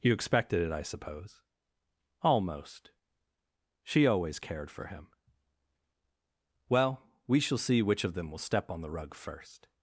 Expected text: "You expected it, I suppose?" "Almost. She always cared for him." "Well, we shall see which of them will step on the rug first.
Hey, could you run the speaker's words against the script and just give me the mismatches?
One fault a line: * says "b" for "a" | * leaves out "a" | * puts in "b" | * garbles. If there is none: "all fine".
all fine